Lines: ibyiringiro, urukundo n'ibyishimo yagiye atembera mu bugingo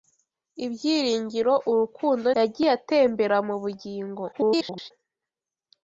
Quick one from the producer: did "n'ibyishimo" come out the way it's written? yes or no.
no